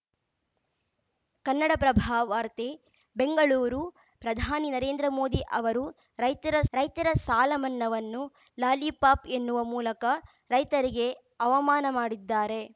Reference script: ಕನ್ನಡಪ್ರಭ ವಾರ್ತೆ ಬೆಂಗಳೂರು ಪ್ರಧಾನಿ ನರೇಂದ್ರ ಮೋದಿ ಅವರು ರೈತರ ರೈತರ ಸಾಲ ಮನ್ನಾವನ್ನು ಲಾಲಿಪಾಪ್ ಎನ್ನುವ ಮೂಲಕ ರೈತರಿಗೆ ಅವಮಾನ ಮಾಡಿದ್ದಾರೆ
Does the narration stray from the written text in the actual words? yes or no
no